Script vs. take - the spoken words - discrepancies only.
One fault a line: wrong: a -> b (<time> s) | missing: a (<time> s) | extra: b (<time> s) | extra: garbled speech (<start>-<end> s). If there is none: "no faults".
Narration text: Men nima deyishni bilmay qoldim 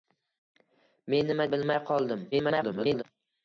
missing: deyishni (1.5 s)
extra: garbled speech (2.3-3.0 s)